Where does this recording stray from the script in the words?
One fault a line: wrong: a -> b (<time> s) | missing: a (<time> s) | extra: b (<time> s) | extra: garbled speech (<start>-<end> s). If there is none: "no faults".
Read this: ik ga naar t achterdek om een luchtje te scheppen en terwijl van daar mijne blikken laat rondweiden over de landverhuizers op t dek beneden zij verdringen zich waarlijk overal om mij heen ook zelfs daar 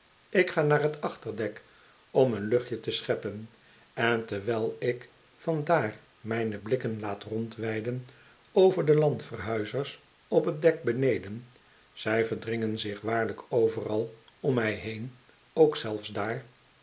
extra: ik (4.8 s)